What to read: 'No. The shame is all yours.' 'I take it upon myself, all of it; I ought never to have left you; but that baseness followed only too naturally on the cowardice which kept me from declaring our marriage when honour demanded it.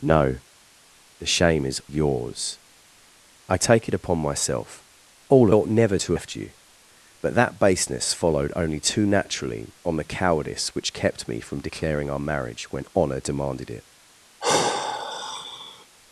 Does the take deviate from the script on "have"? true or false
true